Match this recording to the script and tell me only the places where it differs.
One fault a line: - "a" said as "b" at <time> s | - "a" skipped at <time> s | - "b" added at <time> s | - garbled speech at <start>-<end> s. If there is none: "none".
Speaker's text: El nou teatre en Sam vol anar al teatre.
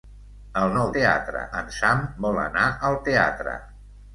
none